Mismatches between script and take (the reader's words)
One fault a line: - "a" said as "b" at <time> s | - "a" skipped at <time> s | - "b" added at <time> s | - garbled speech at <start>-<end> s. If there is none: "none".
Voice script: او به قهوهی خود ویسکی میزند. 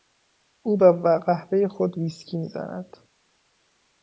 none